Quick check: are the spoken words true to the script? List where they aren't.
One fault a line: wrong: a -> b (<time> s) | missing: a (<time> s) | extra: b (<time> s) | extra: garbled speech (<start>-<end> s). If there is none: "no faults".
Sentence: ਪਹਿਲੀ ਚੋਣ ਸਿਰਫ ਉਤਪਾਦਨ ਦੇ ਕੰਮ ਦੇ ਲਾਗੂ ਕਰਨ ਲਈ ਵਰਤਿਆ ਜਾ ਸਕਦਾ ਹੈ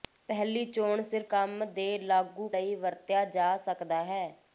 missing: ਉਤਪਾਦਨ ਦੇ (1.3 s)
missing: ਕਰਨ (2.5 s)